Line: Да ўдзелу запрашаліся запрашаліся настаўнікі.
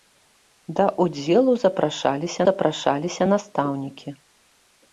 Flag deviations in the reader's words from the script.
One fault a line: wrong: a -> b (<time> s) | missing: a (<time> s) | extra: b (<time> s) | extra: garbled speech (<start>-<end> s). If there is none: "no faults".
no faults